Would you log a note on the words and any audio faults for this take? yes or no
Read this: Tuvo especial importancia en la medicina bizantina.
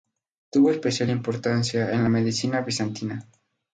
no